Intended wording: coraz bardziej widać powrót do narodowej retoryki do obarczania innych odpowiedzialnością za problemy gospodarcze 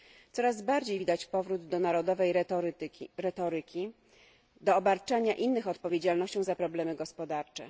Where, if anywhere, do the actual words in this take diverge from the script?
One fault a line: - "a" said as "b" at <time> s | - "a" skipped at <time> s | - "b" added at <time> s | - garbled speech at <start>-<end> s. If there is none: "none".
none